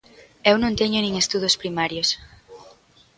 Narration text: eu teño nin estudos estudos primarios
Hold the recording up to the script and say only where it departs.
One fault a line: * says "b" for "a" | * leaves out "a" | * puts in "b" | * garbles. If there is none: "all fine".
* puts in "non"
* leaves out "estudos"